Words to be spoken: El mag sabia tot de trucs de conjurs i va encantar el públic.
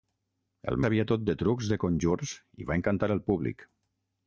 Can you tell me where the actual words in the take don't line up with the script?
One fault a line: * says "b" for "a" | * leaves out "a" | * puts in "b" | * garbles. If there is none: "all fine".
* leaves out "mag"